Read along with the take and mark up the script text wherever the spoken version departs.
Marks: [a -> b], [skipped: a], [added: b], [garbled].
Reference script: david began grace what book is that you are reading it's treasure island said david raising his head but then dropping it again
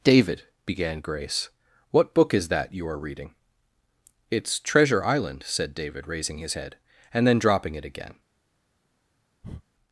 david began grace what book is that you are reading it's treasure island said david raising his head [but -> and] then dropping it again